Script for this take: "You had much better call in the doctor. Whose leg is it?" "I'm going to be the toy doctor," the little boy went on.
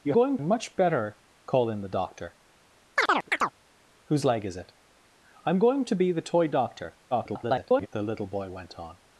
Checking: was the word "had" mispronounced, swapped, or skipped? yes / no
yes